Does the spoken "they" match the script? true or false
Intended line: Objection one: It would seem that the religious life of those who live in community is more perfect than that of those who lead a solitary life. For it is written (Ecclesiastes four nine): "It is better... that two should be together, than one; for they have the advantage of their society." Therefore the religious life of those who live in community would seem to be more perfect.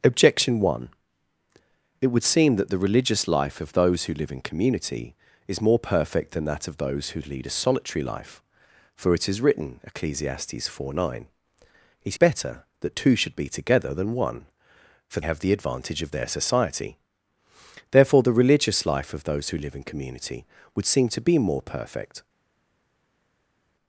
false